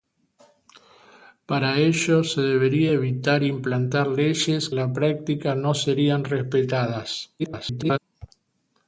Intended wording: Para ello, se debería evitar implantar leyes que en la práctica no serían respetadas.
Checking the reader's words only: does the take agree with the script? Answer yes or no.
no